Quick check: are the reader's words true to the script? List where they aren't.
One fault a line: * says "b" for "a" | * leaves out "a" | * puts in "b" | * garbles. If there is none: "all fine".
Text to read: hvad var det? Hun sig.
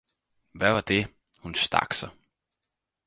* puts in "stak"